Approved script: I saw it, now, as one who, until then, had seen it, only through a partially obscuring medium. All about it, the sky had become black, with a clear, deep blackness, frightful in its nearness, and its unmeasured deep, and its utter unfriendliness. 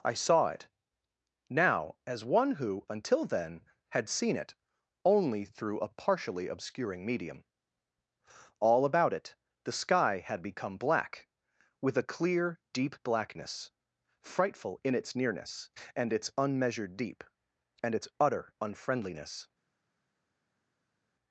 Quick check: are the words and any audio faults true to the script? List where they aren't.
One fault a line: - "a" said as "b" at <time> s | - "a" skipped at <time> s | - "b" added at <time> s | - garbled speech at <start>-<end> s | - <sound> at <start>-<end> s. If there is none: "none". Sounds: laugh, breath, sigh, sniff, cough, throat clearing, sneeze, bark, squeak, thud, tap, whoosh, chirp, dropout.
none